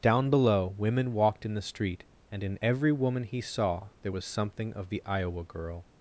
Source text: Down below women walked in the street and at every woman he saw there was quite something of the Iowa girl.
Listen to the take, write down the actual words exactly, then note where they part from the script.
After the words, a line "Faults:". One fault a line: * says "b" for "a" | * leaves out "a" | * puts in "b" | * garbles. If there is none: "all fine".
Down below women walked in the street and in every woman he saw there was something of the Iowa girl.
Faults:
* says "in" for "at"
* leaves out "quite"